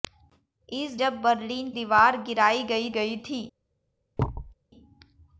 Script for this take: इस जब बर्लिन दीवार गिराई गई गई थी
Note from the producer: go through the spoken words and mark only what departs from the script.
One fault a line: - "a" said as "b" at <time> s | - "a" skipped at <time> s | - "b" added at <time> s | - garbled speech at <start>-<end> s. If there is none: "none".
none